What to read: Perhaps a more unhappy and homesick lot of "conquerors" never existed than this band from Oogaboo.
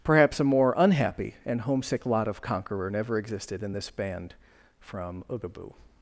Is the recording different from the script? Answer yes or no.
yes